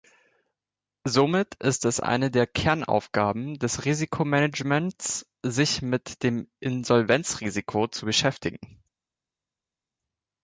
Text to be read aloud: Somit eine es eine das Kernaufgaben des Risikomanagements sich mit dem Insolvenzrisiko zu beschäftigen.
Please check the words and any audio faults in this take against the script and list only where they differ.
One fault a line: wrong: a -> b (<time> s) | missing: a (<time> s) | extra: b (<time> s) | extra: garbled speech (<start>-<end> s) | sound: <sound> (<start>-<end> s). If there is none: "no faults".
wrong: eine -> ist (1.6 s)
wrong: das -> der (2.3 s)